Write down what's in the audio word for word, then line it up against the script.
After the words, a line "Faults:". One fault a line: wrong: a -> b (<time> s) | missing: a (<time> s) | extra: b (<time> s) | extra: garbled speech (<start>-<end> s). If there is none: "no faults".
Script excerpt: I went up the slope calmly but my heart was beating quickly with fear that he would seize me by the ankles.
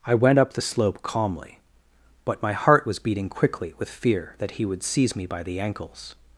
I went up the slope calmly but my heart was beating quickly with fear that he would seize me by the ankles.
Faults:
no faults